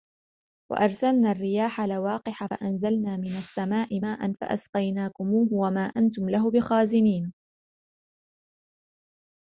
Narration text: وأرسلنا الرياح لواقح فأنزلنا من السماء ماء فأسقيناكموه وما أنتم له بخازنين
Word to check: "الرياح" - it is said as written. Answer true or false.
true